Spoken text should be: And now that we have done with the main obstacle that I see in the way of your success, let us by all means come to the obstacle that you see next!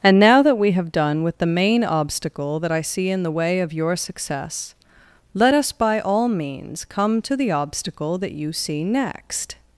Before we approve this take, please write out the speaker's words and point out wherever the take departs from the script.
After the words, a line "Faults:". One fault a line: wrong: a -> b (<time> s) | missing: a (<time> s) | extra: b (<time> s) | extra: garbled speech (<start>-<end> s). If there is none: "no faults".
And now that we have done with the main obstacle that I see in the way of your success, let us by all means come to the obstacle that you see next!
Faults:
no faults